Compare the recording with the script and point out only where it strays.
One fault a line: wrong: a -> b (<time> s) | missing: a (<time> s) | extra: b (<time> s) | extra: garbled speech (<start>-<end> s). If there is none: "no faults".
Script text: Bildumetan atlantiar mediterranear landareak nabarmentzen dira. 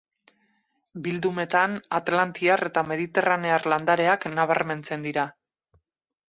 extra: eta (2.7 s)